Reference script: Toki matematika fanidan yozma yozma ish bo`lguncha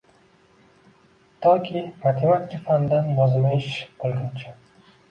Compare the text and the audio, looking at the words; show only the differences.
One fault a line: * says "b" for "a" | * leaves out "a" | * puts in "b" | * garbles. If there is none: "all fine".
* leaves out "yozma"